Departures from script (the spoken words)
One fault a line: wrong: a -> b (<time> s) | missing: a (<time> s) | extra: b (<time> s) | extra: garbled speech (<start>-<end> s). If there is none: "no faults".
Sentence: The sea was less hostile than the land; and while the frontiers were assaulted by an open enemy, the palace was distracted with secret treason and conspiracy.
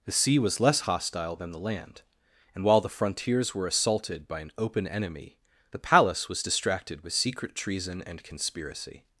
no faults